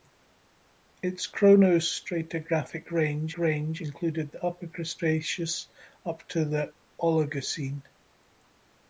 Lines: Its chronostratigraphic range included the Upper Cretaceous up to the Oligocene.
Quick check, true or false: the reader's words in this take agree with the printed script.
false